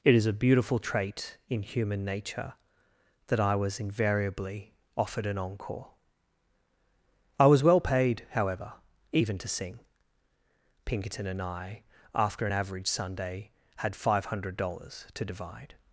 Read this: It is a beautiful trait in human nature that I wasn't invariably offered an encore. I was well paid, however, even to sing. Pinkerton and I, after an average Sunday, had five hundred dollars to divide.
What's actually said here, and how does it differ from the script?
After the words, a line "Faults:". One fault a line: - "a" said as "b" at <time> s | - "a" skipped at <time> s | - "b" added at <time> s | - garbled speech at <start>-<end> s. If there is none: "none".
It is a beautiful trait in human nature that I was invariably offered an encore. I was well paid, however, even to sing. Pinkerton and I, after an average Sunday, had five hundred dollars to divide.
Faults:
- "wasn't" said as "was" at 3.5 s